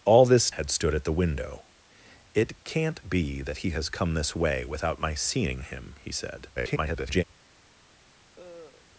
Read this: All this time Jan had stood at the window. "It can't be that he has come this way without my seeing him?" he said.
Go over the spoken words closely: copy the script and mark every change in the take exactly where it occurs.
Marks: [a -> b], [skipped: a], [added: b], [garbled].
All this [skipped: time Jan] had stood at the window. "It can't be that he has come this way without my seeing him?" he said. [garbled]